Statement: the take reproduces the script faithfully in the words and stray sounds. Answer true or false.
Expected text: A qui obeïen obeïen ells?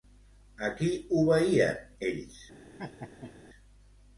false